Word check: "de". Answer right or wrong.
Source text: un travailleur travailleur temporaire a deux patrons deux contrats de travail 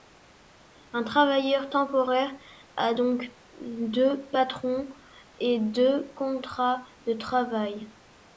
right